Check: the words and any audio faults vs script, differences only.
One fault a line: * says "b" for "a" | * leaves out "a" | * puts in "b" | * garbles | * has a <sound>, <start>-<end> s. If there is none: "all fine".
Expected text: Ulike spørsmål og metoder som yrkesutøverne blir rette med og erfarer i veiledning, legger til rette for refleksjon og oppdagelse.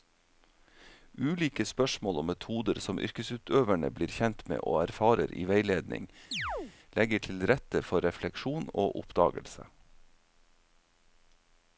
* says "kjent" for "rette"
* has a chirp, 6.3-6.7 s